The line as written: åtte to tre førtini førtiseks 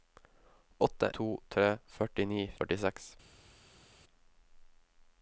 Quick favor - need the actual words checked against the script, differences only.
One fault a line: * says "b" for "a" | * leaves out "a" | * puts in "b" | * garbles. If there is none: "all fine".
all fine